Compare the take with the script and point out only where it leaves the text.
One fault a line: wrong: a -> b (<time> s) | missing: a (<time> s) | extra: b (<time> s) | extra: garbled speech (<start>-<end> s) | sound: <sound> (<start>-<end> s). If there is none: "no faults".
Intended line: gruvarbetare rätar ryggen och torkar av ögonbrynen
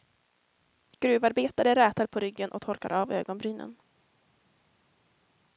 extra: på (2.1 s)